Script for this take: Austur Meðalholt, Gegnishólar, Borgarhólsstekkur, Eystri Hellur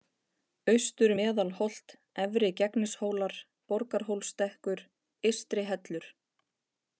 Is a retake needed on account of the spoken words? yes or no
yes